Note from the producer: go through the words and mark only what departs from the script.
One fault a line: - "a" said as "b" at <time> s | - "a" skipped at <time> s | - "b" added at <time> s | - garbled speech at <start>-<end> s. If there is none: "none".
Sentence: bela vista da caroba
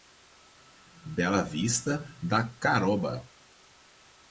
none